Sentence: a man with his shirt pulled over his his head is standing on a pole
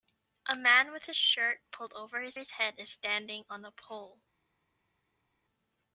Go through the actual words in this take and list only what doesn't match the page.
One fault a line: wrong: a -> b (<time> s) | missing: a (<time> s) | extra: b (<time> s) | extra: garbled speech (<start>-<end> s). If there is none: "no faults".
no faults